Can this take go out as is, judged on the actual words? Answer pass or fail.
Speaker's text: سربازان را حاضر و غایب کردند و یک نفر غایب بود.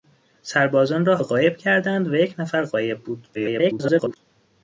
fail